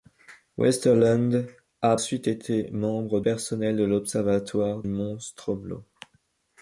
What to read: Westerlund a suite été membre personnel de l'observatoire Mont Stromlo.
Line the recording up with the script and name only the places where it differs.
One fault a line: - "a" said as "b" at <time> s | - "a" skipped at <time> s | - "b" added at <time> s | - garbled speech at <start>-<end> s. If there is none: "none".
none